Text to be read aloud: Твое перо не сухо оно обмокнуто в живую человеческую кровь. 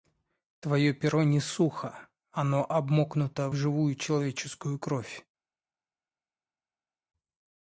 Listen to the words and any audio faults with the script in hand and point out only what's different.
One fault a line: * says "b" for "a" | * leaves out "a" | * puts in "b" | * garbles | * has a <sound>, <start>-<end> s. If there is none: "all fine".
* leaves out "в"